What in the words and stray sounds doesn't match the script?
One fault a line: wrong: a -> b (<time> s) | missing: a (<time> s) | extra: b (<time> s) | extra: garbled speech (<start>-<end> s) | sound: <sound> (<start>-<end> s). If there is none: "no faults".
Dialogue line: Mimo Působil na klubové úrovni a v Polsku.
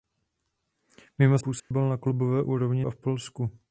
sound: dropout (1.6-1.7 s)